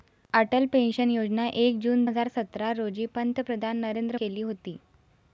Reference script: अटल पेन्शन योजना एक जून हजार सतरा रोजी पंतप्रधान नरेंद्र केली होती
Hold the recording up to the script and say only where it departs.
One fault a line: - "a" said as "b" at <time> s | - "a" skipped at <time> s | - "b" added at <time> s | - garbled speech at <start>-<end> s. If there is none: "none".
none